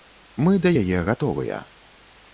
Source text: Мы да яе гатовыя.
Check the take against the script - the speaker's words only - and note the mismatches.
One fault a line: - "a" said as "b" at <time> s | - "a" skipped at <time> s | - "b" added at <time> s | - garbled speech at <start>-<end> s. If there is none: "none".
none